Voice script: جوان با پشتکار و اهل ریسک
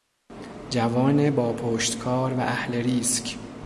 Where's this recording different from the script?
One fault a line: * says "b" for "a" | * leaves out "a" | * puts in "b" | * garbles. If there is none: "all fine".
all fine